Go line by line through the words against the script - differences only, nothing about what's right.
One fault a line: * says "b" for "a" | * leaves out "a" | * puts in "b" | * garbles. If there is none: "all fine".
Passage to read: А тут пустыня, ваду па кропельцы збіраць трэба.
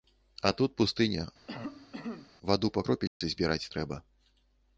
all fine